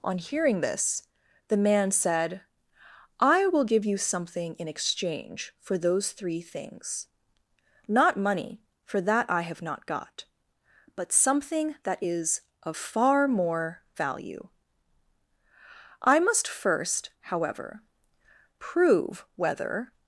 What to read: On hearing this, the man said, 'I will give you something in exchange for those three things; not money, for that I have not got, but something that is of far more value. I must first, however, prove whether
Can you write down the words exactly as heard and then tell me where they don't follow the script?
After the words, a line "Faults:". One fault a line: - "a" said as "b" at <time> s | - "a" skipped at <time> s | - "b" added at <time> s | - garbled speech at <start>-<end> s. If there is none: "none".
On hearing this, the man said, 'I will give you something in exchange for those three things; not money, for that I have not got, but something that is of far more value. I must first, however, prove whether
Faults:
none